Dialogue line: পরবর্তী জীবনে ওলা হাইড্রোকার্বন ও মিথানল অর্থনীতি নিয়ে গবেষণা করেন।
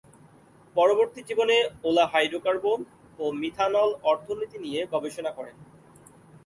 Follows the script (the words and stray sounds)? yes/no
yes